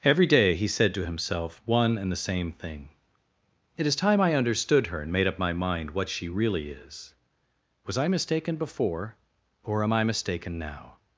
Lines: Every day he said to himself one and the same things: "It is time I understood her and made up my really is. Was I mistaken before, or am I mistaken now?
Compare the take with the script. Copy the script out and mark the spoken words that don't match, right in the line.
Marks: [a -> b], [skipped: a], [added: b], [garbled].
Every day he said to himself one and the same [things: -> thing] "It is time I understood her and made up my [added: mind what she] really is. Was I mistaken before, or am I mistaken now?